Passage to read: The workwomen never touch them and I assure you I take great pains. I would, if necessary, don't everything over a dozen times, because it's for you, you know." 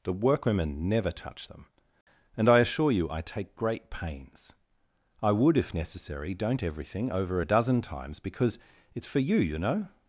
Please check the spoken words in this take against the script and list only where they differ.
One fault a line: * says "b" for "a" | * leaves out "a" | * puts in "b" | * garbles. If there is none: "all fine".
all fine